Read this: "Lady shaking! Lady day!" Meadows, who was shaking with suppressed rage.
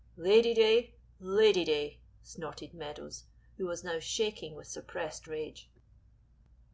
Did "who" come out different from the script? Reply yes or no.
no